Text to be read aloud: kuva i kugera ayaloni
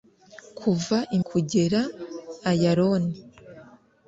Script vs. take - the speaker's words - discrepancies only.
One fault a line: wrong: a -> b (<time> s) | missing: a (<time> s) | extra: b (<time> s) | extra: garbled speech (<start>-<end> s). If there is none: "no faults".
no faults